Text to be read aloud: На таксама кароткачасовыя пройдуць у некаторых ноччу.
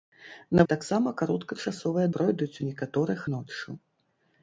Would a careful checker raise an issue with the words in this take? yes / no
no